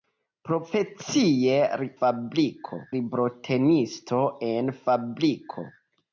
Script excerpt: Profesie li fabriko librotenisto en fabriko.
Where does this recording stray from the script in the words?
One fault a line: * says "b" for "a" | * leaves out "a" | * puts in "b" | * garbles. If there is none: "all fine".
all fine